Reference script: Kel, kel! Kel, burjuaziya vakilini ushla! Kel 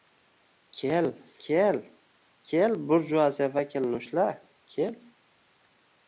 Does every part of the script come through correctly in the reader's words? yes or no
yes